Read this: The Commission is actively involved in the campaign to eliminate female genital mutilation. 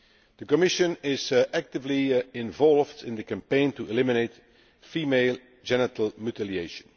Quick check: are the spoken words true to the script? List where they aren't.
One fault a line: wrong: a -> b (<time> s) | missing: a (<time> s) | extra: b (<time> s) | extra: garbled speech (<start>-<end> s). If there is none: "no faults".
no faults